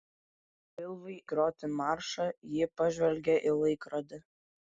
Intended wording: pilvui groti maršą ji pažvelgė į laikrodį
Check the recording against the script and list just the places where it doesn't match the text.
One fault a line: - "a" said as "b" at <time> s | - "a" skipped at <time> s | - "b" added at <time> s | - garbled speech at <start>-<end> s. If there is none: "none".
none